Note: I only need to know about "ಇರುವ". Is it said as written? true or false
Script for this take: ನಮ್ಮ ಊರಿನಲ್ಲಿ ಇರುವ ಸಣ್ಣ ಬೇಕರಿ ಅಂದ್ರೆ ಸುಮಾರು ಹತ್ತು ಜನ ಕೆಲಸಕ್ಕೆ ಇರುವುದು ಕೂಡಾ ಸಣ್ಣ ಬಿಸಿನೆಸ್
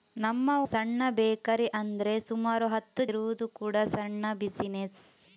false